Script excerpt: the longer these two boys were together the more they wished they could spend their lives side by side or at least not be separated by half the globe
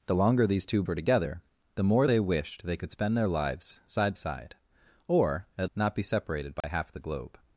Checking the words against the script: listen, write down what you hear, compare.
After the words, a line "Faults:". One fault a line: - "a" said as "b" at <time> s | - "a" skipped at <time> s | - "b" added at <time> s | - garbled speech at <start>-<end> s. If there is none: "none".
the longer these two were together the more they wished they could spend their lives side side or at not be separated by half the globe
Faults:
- "boys" skipped at 0.8 s
- "by" skipped at 4.1 s
- "least" skipped at 5.7 s